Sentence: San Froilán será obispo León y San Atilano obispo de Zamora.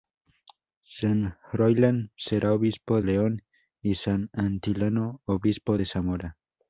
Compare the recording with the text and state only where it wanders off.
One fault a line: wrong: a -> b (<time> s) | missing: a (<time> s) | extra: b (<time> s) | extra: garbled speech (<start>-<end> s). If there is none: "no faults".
no faults